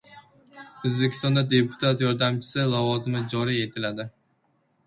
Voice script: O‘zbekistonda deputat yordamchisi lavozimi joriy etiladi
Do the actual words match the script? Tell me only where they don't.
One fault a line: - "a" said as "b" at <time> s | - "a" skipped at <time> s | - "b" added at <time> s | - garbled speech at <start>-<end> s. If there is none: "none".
none